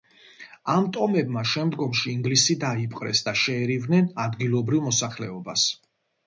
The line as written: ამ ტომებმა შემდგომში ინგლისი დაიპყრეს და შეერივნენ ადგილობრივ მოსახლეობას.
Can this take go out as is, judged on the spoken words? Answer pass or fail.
pass